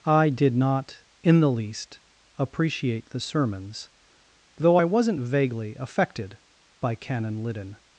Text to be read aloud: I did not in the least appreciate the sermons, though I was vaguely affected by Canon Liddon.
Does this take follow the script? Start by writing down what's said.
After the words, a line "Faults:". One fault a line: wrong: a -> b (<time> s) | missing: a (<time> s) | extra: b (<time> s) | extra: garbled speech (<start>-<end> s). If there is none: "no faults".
I did not in the least appreciate the sermons, though I wasn't vaguely affected by Canon Liddon.
Faults:
wrong: was -> wasn't (4.8 s)